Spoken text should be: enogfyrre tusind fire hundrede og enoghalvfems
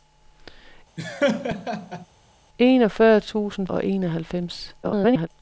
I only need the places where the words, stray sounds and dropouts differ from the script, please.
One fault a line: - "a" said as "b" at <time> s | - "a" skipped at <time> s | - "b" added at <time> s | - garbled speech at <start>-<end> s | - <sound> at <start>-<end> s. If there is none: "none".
- laugh at 1.0-2.1 s
- "fire hundrede" skipped at 3.7 s
- garbled speech at 4.8-5.3 s